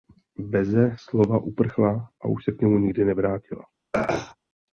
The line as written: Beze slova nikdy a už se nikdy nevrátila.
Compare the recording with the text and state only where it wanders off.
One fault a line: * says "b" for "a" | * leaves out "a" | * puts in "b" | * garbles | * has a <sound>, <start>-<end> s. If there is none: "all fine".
* says "uprchla" for "nikdy"
* puts in "k němu"
* has a throat clearing, 3.9-4.4 s